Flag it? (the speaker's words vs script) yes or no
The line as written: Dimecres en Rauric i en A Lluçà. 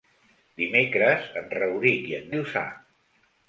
no